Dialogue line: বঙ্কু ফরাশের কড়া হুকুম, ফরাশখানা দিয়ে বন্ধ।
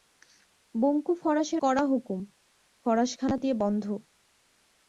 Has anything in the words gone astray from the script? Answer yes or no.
no